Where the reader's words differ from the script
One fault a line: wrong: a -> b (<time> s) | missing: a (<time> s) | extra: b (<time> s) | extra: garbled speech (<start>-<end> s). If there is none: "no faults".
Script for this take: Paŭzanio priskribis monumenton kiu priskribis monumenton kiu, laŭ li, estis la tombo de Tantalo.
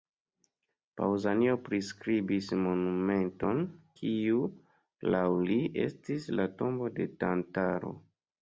missing: priskribis monumenton kiu (4.4 s)